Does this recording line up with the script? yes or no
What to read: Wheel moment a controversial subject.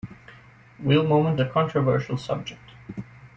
yes